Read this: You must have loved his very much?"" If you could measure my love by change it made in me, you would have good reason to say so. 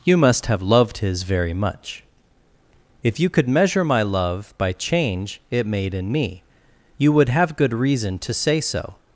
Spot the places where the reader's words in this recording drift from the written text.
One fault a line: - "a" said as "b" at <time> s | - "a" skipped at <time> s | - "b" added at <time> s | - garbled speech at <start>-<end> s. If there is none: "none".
none